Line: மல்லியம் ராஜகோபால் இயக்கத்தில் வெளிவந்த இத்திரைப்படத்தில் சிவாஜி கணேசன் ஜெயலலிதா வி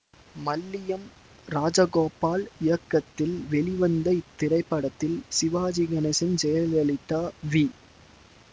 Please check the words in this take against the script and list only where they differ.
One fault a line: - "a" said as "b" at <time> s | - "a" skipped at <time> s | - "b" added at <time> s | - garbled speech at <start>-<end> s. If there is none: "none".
none